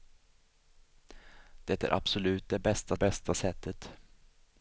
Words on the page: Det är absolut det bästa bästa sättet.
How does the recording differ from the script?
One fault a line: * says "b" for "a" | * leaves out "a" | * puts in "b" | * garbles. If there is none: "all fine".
all fine